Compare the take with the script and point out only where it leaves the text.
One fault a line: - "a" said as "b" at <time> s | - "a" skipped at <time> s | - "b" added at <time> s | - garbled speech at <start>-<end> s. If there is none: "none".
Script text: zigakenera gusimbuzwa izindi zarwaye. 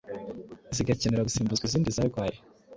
none